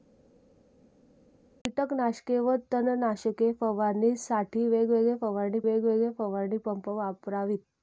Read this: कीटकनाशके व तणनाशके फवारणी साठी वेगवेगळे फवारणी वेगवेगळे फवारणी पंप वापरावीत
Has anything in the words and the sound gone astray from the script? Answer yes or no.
no